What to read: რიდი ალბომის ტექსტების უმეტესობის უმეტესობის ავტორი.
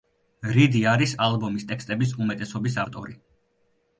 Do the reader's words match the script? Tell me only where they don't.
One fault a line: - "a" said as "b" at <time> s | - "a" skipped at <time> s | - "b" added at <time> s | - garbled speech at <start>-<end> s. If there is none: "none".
- "არის" added at 0.9 s
- "უმეტესობის" skipped at 2.8 s